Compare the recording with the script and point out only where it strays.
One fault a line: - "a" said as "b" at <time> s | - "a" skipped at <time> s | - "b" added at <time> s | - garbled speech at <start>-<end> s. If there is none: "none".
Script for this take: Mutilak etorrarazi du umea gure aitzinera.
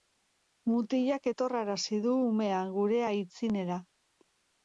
none